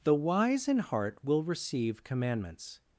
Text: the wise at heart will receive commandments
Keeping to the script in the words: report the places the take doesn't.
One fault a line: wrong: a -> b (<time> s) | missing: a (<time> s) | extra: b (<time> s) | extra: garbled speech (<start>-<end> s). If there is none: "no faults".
wrong: at -> in (0.7 s)